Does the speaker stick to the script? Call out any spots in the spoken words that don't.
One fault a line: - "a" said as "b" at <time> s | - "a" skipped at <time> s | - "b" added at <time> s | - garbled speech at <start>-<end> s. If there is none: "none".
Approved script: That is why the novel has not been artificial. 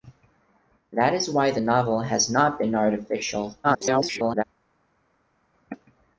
- garbled speech at 3.6-4.4 s